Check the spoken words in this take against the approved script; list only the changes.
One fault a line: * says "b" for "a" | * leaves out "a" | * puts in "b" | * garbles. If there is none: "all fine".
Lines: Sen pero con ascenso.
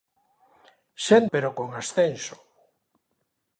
all fine